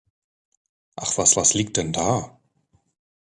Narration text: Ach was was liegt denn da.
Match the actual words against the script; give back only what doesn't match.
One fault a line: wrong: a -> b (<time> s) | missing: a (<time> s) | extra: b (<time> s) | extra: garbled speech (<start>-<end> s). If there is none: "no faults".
no faults